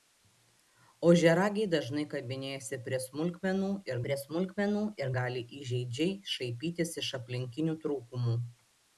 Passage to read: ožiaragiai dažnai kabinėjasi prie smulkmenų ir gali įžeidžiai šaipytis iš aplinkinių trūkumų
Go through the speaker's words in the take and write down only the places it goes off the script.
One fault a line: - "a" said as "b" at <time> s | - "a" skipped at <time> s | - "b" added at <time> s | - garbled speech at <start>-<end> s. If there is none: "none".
- "prie smulkmenų ir" added at 4.1 s